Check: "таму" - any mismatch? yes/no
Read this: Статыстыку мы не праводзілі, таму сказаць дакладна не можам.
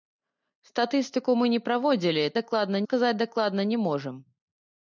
yes